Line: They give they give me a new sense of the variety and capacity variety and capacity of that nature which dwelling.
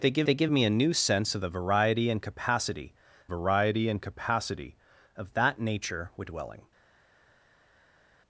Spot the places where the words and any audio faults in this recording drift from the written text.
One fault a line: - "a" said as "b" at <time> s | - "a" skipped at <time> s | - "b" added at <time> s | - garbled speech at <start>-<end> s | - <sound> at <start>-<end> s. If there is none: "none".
none